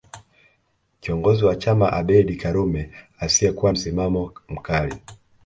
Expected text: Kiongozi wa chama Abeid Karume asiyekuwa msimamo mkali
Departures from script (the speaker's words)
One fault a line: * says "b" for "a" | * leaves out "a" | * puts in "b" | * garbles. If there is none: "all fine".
all fine